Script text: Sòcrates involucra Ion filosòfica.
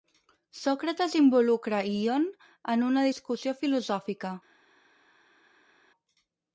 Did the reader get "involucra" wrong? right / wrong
right